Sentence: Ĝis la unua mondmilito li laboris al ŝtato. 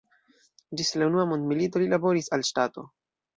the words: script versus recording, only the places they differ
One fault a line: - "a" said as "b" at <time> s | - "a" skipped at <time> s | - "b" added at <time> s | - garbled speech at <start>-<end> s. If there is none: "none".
none